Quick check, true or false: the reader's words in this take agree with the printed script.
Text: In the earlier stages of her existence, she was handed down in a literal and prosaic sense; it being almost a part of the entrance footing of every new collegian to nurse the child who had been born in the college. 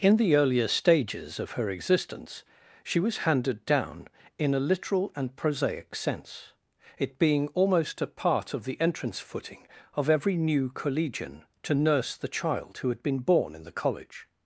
true